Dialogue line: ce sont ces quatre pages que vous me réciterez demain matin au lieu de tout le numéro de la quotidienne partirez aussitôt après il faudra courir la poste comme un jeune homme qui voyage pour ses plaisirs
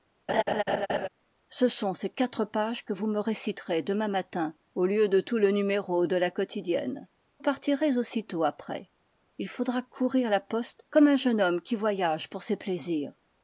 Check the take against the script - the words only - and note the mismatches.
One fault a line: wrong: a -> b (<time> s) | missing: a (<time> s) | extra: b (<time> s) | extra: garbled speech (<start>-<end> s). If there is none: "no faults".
no faults